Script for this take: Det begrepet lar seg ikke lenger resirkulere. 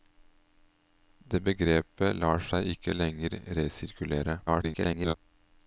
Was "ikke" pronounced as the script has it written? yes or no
yes